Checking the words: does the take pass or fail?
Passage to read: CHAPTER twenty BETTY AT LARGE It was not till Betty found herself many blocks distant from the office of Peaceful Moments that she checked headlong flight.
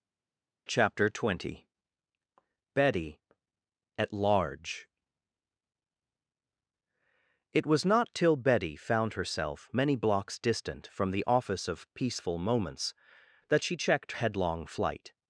pass